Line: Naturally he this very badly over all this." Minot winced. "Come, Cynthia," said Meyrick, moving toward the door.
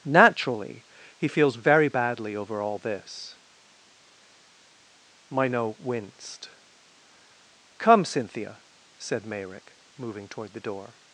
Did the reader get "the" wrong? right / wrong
right